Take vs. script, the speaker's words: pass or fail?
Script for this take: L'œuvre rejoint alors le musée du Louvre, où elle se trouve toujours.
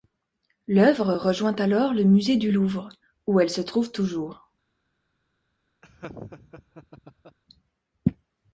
pass